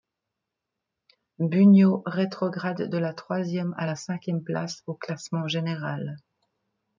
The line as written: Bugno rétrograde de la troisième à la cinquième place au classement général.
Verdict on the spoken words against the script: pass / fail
pass